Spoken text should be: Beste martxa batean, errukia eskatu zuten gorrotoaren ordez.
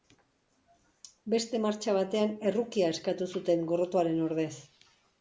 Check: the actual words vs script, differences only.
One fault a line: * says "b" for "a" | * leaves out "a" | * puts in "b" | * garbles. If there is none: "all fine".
all fine